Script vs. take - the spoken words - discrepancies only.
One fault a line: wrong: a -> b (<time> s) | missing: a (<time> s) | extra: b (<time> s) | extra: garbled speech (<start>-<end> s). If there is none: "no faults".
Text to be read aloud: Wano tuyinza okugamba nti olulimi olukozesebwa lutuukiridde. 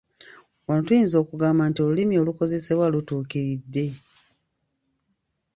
no faults